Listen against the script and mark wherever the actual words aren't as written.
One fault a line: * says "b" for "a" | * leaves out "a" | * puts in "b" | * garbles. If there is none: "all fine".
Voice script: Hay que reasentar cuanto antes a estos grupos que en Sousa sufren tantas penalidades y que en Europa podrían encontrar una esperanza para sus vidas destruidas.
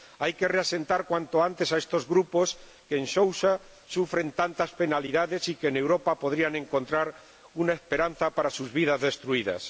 all fine